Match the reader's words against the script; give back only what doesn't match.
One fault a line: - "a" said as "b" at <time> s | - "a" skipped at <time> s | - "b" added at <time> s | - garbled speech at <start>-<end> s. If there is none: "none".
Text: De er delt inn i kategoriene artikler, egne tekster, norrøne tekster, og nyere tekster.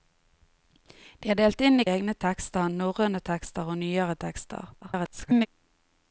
- "kategoriene artikler" skipped at 1.9 s
- garbled speech at 4.8-5.5 s